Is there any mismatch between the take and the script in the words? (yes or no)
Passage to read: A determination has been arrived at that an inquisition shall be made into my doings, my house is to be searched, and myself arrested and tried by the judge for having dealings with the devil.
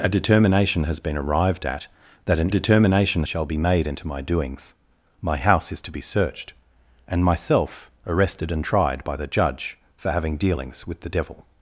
yes